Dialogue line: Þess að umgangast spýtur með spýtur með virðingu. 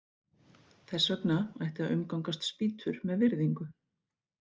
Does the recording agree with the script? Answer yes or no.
no